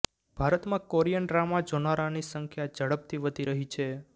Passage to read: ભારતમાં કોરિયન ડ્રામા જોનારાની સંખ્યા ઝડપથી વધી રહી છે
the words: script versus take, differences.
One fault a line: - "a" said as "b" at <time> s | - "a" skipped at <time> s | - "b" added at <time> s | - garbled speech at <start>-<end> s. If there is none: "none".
none